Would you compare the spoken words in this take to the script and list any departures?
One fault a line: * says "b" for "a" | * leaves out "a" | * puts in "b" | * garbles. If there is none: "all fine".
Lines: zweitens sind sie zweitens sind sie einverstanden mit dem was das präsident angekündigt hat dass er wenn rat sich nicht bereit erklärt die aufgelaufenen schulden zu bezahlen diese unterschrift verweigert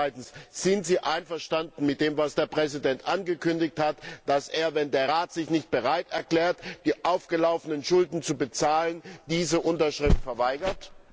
* leaves out "zweitens sind sie"
* says "der" for "das"
* puts in "der"